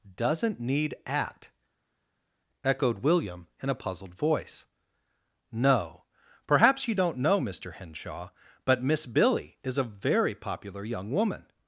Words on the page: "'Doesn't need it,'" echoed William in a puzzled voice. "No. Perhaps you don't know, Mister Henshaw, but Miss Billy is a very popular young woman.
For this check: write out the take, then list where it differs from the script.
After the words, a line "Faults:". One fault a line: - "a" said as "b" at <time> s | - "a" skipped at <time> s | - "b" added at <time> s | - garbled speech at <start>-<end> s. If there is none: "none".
"'Doesn't need at,'" echoed William in a puzzled voice. "No. Perhaps you don't know, Mister Henshaw, but Miss Billy is a very popular young woman.
Faults:
- "it" said as "at" at 1.1 s